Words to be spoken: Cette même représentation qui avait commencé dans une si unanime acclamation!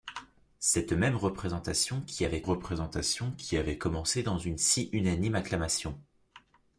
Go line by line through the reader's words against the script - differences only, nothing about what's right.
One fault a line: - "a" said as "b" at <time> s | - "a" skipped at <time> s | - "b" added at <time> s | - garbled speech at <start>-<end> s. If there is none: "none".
- "représentation qui avait" added at 2.4 s